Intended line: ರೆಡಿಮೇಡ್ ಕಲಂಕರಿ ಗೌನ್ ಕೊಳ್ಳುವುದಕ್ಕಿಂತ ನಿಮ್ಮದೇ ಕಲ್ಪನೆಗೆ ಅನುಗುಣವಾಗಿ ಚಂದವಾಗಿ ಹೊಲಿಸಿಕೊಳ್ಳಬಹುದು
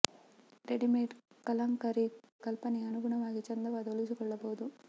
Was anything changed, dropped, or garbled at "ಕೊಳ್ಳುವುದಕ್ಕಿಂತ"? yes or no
yes